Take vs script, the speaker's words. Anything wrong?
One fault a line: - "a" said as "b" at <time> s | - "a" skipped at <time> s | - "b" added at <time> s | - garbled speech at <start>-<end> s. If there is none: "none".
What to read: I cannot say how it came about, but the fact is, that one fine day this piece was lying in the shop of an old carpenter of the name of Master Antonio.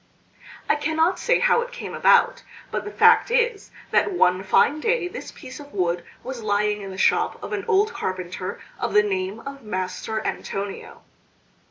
- "of wood" added at 5.6 s